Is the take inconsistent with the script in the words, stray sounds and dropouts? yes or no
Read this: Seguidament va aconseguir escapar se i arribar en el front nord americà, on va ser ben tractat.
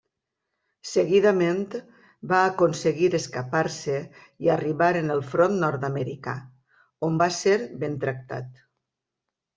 no